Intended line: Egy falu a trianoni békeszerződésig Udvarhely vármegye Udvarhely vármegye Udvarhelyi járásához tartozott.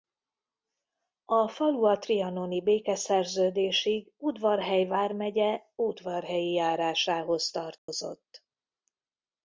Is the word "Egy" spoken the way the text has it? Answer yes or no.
no